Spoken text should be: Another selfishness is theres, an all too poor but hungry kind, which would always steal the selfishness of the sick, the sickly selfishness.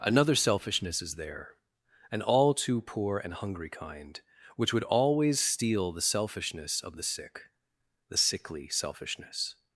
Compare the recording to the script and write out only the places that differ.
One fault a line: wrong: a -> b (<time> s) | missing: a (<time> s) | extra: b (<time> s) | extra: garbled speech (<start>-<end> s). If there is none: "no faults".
wrong: theres -> there (1.1 s)
wrong: but -> and (3.2 s)